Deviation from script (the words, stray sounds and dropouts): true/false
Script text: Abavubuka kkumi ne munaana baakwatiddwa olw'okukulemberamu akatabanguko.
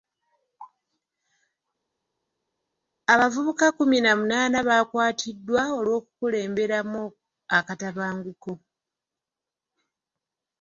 true